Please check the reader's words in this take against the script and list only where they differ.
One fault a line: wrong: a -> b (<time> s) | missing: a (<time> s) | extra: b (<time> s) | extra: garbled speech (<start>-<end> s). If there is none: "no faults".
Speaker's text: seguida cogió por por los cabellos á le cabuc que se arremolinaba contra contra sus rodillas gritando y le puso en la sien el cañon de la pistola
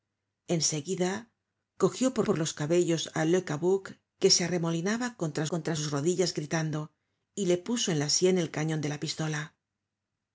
no faults